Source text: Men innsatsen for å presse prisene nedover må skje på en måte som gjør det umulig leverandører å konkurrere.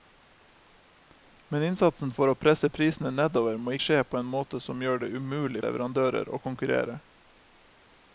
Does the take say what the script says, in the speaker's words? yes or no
yes